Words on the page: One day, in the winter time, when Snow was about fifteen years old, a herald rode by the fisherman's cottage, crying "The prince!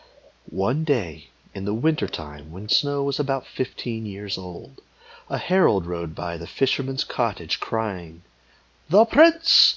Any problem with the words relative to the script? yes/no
no